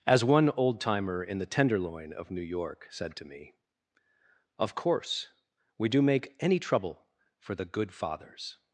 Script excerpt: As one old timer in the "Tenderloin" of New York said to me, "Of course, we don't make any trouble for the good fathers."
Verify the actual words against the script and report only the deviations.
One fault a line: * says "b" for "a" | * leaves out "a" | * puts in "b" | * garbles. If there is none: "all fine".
* says "do" for "don't"